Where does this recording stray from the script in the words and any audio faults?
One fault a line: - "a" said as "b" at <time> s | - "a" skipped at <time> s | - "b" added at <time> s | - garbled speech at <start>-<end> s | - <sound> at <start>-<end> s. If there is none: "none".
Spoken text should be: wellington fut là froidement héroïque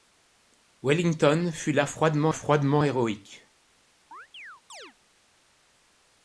- "froidement" added at 2.3 s
- chirp at 4.1-4.9 s